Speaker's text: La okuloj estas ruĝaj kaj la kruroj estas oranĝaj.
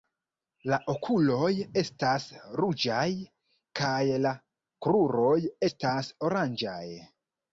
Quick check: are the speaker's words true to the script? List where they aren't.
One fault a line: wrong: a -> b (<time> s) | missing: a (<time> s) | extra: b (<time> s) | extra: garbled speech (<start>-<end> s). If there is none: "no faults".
no faults